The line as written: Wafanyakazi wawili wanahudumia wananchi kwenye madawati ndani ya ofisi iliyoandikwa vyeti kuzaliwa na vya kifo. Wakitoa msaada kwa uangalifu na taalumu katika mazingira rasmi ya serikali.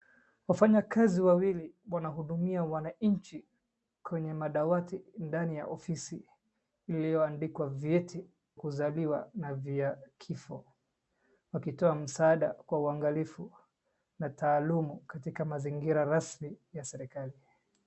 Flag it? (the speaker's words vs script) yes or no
no